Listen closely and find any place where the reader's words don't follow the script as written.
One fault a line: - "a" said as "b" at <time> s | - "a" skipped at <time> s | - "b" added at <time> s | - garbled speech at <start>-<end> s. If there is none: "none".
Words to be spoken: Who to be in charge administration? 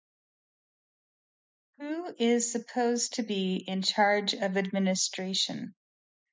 - "is supposed" added at 2.2 s
- "of" added at 4.3 s